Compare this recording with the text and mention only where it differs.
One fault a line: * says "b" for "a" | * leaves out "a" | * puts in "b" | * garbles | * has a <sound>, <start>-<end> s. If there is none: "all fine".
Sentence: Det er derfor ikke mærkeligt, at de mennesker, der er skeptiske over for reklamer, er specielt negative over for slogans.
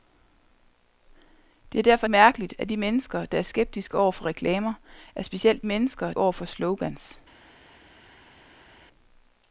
* leaves out "ikke"
* says "mennesker" for "negative"